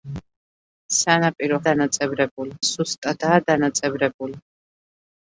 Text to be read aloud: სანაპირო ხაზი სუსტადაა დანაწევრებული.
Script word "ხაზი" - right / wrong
wrong